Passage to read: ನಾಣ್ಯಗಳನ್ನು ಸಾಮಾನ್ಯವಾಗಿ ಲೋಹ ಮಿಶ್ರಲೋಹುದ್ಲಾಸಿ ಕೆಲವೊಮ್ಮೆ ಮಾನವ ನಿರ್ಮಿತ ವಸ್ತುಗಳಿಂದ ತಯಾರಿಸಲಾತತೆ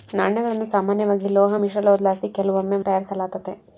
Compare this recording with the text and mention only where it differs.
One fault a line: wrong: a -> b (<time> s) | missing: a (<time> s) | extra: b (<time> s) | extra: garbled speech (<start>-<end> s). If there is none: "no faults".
missing: ಮಾನವ ನಿರ್ಮಿತ ವಸ್ತುಗಳಿಂದ (2.8 s)